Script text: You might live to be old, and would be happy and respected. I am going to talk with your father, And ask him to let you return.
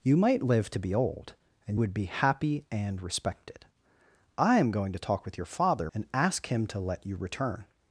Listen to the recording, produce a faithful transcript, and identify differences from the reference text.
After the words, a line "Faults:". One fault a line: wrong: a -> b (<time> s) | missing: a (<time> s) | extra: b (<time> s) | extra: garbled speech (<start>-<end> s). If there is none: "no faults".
You might live to be old, and would be happy and respected. I am going to talk with your father, And ask him to let you return.
Faults:
no faults